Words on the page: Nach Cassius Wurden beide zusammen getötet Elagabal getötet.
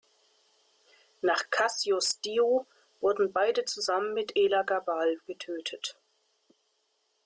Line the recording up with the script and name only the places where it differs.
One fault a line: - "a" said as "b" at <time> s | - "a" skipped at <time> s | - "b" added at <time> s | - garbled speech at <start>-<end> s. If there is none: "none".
- "Dio" added at 2.2 s
- "getötet" said as "mit" at 4.1 s